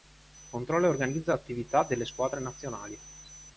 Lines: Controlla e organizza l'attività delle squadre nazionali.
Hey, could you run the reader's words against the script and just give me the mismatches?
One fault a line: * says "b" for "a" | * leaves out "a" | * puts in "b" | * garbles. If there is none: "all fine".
all fine